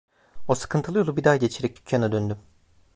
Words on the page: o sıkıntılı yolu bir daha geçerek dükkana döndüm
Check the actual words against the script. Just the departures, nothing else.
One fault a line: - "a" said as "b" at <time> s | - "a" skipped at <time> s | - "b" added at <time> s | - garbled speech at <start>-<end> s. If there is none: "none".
none